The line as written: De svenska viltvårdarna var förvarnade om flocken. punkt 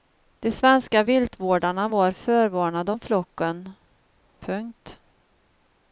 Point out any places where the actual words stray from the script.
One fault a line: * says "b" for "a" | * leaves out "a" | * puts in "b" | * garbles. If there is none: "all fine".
all fine